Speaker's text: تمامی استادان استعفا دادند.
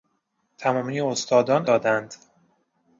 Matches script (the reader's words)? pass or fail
fail